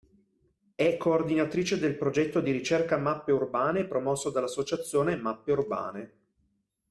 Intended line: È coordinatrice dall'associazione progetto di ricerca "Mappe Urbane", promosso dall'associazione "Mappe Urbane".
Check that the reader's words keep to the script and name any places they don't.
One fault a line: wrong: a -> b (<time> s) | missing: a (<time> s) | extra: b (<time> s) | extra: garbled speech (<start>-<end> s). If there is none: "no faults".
wrong: dall'associazione -> del (1.8 s)